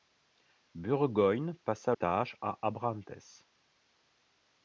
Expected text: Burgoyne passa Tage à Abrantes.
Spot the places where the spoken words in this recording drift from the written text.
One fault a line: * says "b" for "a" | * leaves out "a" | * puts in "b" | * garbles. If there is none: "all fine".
all fine